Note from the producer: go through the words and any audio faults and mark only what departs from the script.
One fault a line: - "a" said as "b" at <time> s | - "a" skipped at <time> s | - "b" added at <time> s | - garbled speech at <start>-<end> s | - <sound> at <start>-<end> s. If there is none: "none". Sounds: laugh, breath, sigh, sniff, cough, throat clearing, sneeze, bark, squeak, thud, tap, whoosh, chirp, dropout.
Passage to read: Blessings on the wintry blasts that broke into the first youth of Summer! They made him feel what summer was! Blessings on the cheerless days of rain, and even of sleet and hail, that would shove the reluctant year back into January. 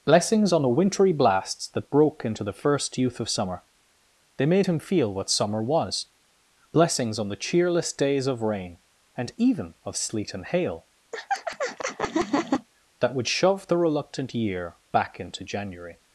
- laugh at 11.1-12.7 s